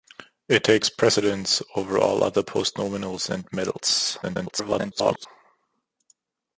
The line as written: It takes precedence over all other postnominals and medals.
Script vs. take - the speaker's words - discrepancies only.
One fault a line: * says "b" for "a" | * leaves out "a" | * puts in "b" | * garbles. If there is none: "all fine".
* garbles